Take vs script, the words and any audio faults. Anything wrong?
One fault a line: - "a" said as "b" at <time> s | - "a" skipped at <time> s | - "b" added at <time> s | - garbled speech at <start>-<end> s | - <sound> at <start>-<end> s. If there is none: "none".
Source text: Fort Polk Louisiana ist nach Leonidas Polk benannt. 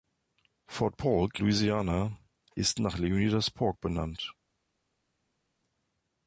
none